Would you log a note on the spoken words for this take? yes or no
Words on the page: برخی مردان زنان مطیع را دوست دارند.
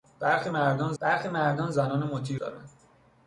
yes